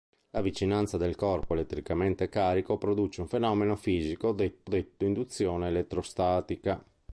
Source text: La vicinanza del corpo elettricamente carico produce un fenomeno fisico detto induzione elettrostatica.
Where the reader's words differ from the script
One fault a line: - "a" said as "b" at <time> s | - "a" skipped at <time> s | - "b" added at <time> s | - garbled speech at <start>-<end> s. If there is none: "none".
- "detto" added at 4.6 s